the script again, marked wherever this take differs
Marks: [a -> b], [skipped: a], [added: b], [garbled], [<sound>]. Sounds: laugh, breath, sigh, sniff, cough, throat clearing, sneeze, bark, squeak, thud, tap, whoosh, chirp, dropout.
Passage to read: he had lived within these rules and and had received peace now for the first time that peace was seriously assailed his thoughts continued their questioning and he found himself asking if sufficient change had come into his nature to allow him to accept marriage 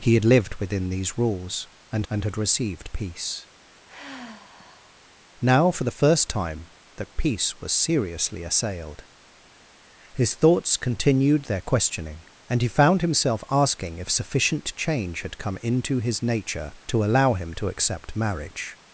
he had lived within these rules and and had received peace [sigh] now for the first time that peace was seriously assailed his thoughts continued their questioning and he found himself asking if sufficient change had come into his nature to allow him to accept marriage